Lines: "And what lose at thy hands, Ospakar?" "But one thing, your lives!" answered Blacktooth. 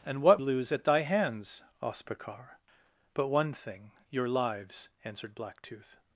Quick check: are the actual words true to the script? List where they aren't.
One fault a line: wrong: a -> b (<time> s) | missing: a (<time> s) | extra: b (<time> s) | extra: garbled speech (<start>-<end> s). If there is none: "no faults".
no faults